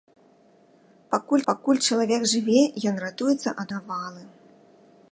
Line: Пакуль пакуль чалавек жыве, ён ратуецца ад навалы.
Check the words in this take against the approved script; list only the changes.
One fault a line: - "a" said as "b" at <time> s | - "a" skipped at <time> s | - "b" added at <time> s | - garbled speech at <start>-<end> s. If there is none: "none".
none